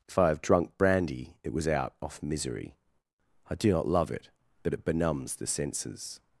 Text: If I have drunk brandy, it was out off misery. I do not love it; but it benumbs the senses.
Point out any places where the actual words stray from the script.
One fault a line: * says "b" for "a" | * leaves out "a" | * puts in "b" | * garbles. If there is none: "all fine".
all fine